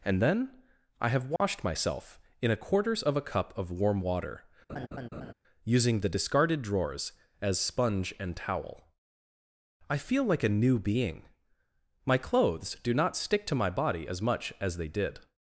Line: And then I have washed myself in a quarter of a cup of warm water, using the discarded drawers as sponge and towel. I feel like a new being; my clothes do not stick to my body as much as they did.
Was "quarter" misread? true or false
true